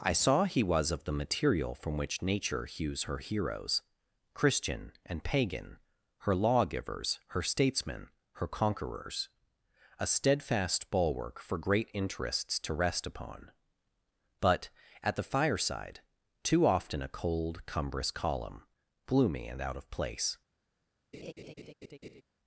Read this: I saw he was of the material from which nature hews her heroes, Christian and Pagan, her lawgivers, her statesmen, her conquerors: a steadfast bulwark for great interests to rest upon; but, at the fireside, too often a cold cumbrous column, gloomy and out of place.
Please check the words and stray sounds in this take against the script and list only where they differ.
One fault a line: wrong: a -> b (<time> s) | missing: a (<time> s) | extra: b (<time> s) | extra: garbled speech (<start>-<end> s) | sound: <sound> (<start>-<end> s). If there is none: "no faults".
sound: laugh (21.1-22.2 s)